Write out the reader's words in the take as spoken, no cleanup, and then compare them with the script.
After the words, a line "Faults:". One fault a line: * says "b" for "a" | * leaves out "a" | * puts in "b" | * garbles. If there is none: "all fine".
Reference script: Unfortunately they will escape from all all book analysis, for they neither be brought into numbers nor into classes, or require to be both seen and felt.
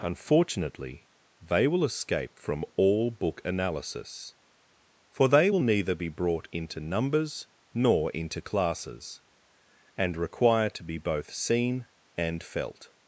Unfortunately they will escape from all book analysis, for they will neither be brought into numbers nor into classes, and require to be both seen and felt.
Faults:
* leaves out "all"
* puts in "will"
* says "and" for "or"